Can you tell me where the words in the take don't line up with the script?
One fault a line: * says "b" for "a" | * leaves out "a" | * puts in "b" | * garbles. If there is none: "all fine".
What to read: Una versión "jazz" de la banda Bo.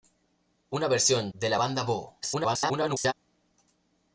* leaves out "jazz"
* garbles